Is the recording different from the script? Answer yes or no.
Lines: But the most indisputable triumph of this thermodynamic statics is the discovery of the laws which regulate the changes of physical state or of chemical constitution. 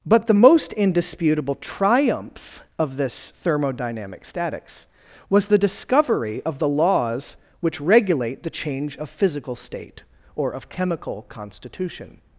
yes